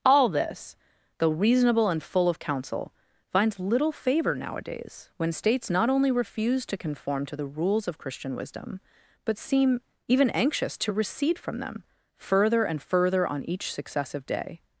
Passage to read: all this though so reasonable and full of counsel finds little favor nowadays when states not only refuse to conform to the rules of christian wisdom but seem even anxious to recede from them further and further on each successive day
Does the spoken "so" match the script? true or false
false